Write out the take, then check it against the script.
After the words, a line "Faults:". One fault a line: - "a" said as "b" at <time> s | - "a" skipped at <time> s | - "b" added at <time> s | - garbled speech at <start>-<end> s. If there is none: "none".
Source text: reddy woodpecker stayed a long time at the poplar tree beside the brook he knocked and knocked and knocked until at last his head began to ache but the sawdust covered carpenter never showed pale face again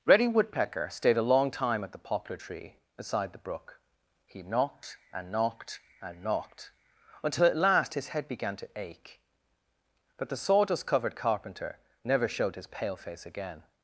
reddy woodpecker stayed a long time at the poplar tree beside the brook he knocked and knocked and knocked until at last his head began to ache but the sawdust covered carpenter never showed his pale face again
Faults:
- "his" added at 12.6 s